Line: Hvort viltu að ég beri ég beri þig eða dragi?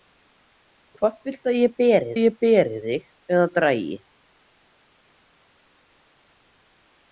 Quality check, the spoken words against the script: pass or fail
pass